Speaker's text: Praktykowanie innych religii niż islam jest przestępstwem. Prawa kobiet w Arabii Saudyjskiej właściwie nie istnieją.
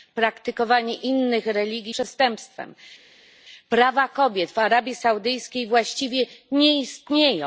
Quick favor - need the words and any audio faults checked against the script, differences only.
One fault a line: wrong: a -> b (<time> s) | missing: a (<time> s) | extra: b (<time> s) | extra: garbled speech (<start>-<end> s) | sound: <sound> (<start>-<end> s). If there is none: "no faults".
missing: niż islam jest (1.9 s)